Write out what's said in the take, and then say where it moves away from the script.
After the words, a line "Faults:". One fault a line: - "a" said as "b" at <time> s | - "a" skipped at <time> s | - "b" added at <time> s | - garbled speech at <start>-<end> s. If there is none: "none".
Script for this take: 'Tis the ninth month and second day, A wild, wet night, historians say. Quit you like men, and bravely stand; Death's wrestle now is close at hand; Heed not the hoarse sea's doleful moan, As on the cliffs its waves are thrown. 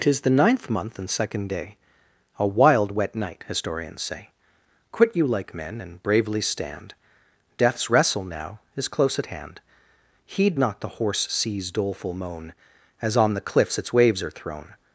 'Tis the ninth month and second day, A wild, wet night, historians say. Quit you like men, and bravely stand; Death's wrestle now is close at hand; Heed not the hoarse sea's doleful moan, As on the cliffs its waves are thrown.
Faults:
none